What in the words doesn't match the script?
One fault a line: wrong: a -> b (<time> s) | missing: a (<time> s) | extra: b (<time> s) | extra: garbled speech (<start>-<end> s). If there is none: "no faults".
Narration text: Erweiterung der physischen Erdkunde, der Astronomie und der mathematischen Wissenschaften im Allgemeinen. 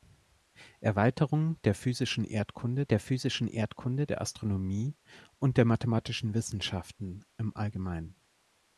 extra: physischen Erdkunde der (3.0 s)